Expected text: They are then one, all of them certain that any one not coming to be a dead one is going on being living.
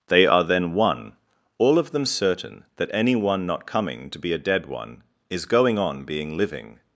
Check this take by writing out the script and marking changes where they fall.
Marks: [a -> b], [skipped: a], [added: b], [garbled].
They are then one, all of them certain that any one not coming to be a dead one is going on being living.